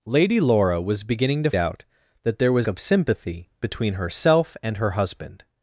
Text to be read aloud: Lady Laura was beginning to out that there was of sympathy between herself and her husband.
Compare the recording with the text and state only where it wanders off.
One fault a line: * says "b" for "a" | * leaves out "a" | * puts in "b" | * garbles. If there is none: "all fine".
all fine